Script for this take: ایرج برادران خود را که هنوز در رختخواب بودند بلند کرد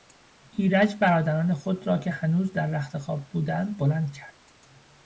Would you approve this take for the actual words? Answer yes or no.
yes